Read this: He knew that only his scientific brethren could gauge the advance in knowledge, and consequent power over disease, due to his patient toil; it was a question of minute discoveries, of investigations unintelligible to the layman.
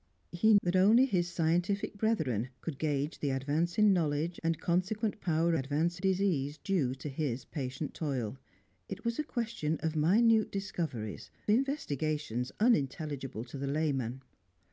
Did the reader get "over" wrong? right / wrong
wrong